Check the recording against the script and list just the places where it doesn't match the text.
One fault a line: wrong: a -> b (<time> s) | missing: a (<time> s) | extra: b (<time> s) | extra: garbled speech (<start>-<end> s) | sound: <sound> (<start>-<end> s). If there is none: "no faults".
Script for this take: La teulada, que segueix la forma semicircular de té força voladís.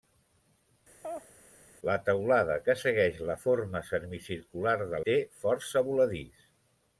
sound: laugh (1.0-1.3 s)